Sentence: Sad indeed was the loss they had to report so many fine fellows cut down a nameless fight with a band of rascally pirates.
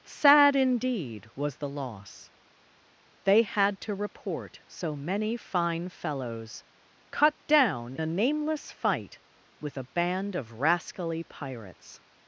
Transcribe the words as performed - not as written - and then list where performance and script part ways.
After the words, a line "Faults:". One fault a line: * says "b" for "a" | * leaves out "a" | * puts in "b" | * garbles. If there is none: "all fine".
Sad indeed was the loss they had to report so many fine fellows cut down a nameless fight with a band of rascally pirates.
Faults:
all fine